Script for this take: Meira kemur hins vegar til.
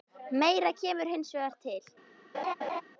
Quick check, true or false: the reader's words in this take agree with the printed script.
true